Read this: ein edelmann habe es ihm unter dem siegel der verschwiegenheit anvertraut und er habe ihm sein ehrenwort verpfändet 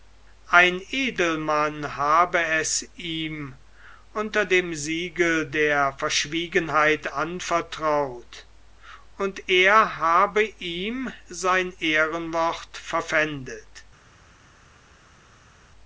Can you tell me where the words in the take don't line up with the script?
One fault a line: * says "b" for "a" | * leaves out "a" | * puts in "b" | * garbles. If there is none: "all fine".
all fine